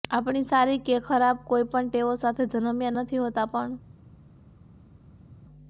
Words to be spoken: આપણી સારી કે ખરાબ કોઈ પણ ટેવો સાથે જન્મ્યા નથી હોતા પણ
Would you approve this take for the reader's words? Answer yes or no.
yes